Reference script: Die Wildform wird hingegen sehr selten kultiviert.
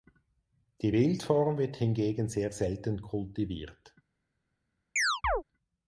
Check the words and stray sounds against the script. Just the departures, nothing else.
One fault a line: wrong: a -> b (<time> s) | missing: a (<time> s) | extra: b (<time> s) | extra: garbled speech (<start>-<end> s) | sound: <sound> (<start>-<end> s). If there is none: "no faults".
sound: chirp (5.0-5.4 s)